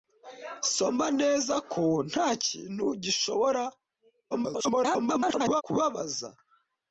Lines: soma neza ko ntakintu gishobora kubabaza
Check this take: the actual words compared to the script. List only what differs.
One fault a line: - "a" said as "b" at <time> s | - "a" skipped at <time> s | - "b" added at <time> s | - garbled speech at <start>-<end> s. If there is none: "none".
- garbled speech at 4.3-5.6 s